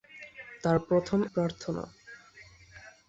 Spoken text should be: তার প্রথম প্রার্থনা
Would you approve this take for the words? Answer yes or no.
yes